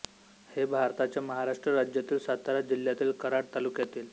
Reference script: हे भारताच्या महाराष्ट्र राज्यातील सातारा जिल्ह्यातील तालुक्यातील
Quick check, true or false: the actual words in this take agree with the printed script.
false